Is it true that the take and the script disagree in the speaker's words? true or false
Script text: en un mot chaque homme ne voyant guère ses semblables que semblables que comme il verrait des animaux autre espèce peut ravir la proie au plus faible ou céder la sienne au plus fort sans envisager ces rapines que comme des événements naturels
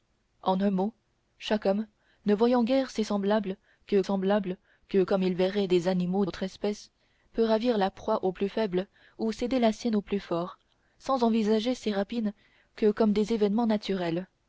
false